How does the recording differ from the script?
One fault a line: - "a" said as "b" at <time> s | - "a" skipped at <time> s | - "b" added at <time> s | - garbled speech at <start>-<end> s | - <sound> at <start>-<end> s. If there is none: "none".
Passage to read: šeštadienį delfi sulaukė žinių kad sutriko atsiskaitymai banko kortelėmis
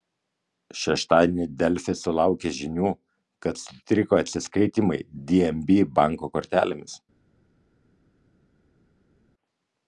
- "dnb" added at 5.3 s